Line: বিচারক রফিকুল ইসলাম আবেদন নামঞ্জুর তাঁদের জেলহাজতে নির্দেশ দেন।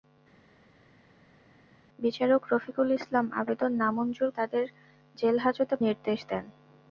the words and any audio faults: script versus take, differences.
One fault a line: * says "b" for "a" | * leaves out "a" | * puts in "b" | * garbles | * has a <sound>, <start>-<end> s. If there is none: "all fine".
all fine